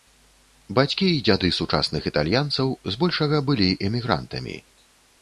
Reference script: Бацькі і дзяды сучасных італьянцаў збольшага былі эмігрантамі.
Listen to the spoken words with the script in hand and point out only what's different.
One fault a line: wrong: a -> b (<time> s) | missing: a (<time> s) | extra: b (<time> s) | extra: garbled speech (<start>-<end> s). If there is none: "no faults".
no faults